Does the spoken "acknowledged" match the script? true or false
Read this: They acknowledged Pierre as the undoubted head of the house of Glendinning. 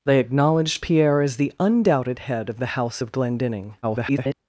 true